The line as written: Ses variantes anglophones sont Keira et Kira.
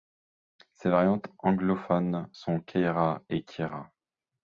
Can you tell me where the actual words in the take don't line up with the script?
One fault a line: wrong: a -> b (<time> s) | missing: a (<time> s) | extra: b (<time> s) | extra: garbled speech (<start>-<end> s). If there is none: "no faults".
no faults